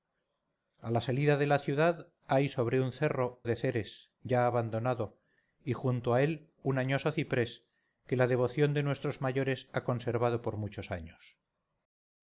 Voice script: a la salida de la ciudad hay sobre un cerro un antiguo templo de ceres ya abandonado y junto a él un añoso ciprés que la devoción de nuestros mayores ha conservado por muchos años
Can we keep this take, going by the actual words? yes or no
no